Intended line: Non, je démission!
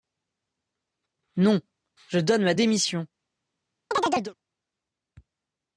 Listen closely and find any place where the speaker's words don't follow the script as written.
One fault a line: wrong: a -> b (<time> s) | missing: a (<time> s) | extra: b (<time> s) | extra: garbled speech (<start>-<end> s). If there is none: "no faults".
extra: donne ma (2.2 s)